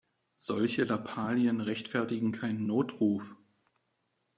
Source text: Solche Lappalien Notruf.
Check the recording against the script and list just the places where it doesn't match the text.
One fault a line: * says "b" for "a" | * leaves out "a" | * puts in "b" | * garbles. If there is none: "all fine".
* puts in "rechtfertigen keinen"